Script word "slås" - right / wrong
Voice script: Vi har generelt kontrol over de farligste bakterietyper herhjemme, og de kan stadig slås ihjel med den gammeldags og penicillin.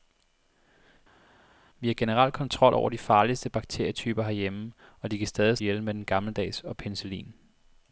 wrong